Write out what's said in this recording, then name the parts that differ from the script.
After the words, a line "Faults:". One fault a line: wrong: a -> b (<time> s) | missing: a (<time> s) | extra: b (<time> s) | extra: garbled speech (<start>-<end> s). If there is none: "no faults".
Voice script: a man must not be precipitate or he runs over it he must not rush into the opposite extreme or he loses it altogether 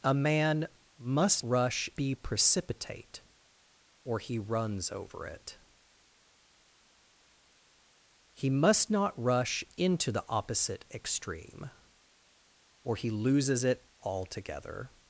a man must rush be precipitate or he runs over it he must not rush into the opposite extreme or he loses it altogether
Faults:
wrong: not -> rush (1.5 s)